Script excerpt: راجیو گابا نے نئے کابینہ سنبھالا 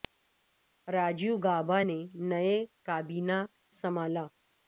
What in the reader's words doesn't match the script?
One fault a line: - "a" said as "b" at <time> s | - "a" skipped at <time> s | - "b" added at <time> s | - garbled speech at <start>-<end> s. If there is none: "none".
none